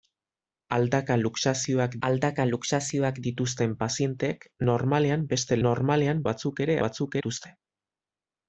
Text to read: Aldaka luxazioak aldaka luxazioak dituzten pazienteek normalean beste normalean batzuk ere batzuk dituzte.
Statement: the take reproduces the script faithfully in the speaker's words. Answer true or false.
true